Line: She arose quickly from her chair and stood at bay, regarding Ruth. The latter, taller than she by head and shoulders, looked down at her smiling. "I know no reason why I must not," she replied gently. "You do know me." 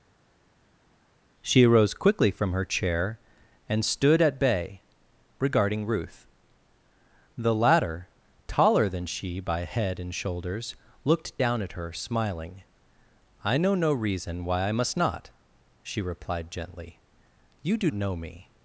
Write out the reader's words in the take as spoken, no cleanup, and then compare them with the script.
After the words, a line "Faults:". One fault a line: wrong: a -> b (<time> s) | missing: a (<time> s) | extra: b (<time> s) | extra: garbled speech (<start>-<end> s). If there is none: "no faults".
She arose quickly from her chair and stood at bay, regarding Ruth. The latter, taller than she by head and shoulders, looked down at her smiling. "I know no reason why I must not," she replied gently. "You do know me."
Faults:
no faults